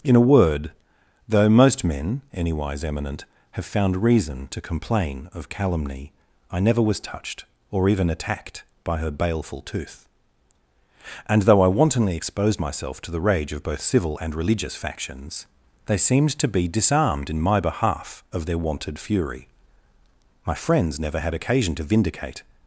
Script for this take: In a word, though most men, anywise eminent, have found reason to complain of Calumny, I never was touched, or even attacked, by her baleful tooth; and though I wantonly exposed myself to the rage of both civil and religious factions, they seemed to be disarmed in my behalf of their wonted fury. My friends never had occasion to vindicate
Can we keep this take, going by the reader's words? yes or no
yes